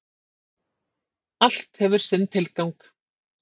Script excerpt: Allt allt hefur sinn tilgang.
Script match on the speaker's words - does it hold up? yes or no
no